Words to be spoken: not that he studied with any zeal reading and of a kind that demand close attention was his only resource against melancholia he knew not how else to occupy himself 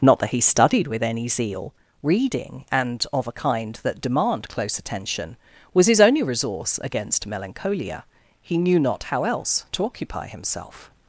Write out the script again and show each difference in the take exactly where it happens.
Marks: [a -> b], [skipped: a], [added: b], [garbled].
not that he studied with any zeal reading and of a kind that demand close attention was his only resource against melancholia he knew not how else to occupy himself